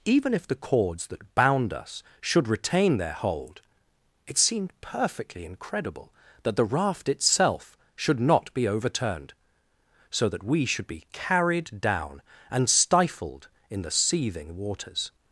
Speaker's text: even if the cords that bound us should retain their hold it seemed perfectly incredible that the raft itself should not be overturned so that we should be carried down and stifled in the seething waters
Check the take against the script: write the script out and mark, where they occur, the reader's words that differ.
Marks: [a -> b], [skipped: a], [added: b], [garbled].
even if the cords that bound us should retain their hold it seemed perfectly incredible that the raft itself should not be overturned so that we should be carried down and stifled in the seething waters